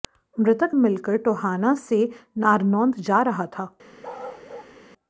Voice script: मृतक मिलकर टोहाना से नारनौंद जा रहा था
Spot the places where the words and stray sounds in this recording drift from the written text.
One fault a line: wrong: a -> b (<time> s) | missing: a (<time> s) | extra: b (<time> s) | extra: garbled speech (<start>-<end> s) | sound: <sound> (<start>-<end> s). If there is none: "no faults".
sound: bark (4.0-4.7 s)